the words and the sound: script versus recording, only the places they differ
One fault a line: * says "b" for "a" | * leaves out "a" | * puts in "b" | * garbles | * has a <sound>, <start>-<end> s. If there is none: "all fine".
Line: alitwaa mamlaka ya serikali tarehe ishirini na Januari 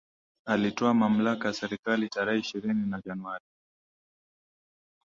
all fine